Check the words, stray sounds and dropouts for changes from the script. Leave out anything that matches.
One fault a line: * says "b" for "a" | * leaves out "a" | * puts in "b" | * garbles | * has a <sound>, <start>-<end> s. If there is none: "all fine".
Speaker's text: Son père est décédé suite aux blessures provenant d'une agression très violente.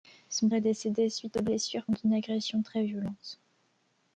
* leaves out "père"
* leaves out "provenant"